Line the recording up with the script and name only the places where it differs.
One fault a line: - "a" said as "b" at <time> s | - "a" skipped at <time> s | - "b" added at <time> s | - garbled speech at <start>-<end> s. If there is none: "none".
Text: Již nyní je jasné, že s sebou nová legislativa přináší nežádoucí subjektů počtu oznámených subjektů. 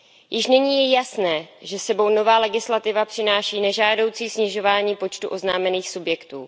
- "subjektů" said as "snižování" at 4.3 s